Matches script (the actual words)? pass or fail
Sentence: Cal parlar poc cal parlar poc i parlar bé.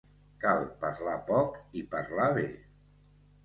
fail